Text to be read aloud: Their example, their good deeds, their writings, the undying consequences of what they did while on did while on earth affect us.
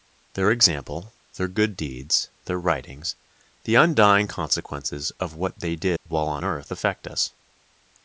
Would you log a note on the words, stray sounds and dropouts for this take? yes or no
yes